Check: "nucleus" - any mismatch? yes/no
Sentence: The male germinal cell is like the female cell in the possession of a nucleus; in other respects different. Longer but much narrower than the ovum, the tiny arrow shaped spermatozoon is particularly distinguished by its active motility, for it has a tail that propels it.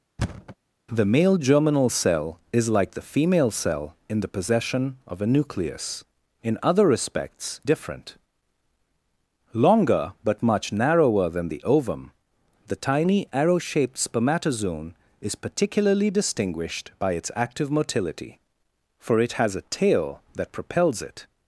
no